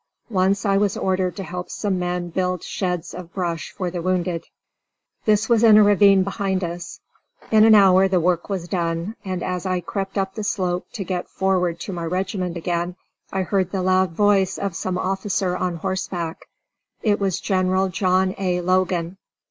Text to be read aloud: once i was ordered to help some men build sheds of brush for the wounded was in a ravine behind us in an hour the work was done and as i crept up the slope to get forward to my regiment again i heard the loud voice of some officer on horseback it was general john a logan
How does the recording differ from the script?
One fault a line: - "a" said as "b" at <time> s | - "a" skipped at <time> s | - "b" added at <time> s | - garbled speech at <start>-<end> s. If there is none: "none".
- "this" added at 5.2 s